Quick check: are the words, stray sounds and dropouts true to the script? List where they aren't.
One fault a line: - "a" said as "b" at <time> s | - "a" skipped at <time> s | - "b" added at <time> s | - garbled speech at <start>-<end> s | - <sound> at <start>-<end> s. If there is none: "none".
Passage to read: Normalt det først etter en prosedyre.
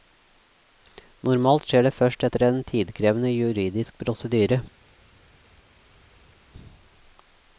- "skjer" added at 1.7 s
- "tidkrevende juridisk" added at 2.7 s